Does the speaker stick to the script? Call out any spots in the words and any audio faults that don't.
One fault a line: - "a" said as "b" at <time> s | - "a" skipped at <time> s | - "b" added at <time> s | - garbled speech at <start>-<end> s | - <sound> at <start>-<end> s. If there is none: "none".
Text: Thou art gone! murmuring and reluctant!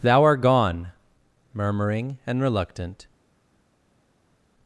none